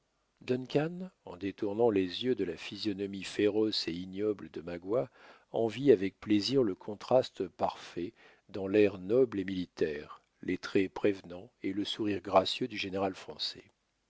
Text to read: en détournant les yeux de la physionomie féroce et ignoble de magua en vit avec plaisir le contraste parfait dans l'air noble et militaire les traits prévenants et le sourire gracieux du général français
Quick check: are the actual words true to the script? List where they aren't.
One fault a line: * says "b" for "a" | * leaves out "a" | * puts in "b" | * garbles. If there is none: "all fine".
all fine